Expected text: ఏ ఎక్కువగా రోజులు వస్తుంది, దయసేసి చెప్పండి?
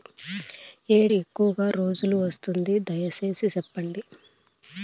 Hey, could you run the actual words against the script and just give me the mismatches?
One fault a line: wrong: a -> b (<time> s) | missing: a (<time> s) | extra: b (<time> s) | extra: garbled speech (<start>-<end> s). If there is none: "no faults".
no faults